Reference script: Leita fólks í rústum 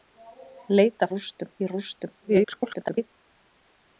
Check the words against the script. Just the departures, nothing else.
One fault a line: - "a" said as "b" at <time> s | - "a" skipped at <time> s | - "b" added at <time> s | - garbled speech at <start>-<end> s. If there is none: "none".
- "fólks" said as "rústum" at 1.1 s
- garbled speech at 2.2-3.1 s